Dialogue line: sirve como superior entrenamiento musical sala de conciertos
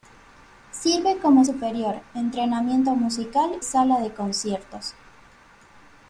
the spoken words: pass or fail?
pass